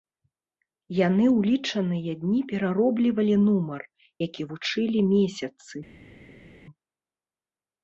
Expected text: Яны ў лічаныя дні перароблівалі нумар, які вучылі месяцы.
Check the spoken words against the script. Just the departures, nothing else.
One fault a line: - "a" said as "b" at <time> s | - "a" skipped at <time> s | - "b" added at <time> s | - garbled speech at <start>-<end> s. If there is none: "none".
none